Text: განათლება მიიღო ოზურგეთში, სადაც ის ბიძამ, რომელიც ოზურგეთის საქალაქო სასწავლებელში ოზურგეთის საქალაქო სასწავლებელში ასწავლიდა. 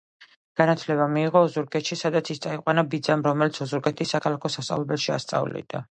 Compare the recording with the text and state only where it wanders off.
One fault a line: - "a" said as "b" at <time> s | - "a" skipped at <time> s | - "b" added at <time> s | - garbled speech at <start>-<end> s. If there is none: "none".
- "წაიყვანა" added at 2.5 s
- "ოზურგეთის საქალაქო სასწავლებელში" skipped at 5.2 s